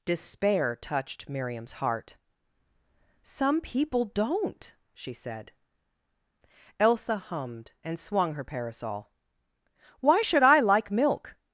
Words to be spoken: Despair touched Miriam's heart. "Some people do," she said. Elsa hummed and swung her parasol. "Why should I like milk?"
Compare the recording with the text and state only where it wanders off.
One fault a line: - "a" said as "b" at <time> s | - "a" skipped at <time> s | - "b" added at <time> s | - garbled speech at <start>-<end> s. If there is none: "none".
- "do" said as "don't" at 4.0 s